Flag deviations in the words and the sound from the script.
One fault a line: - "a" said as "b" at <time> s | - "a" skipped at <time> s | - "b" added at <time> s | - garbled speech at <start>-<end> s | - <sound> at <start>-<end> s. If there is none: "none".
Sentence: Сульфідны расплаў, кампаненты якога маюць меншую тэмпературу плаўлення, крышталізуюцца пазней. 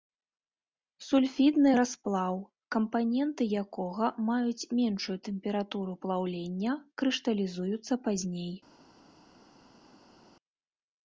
none